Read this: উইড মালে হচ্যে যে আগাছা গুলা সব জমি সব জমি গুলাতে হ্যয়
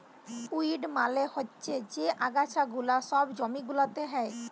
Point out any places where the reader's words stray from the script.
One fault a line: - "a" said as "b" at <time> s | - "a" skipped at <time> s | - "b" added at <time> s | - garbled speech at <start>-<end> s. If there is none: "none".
- "সব জমি" skipped at 3.6 s